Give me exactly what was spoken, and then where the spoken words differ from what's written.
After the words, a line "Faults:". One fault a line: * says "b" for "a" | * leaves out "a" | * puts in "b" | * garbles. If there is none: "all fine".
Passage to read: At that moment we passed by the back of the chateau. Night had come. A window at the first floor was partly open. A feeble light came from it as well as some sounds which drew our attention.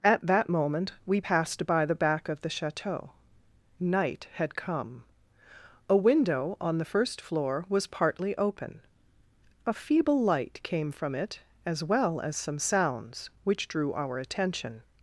At that moment we passed by the back of the chateau. Night had come. A window on the first floor was partly open. A feeble light came from it as well as some sounds which drew our attention.
Faults:
* says "on" for "at"